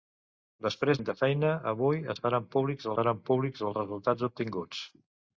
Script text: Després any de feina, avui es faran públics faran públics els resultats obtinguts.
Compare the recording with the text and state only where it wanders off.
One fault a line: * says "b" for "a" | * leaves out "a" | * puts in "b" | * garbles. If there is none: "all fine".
all fine